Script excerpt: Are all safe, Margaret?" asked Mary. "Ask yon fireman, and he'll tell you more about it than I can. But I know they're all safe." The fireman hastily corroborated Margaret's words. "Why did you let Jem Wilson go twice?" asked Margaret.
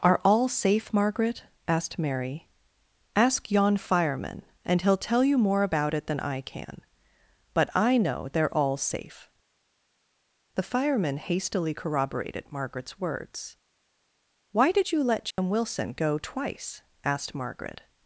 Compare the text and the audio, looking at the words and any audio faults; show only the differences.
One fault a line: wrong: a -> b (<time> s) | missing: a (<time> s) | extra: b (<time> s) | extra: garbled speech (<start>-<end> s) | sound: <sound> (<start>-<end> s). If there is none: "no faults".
sound: dropout (15.3-15.4 s)